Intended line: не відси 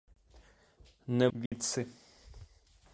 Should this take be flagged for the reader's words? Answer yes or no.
no